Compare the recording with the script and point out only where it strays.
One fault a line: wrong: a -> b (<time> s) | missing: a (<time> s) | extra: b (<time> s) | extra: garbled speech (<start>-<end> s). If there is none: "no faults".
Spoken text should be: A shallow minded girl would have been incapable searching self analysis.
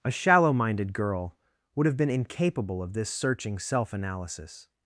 extra: of this (2.8 s)